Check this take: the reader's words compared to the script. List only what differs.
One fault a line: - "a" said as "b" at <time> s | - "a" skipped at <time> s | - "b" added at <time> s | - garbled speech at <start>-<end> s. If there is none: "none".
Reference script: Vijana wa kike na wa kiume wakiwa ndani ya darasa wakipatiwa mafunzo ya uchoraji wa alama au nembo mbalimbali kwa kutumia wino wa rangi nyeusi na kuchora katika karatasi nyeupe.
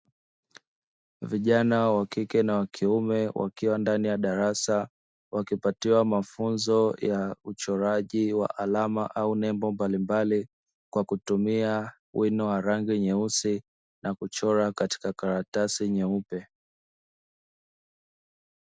none